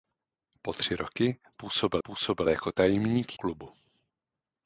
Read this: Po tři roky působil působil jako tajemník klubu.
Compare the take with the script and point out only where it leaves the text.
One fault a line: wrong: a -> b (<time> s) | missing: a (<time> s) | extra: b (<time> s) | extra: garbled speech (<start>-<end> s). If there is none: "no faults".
no faults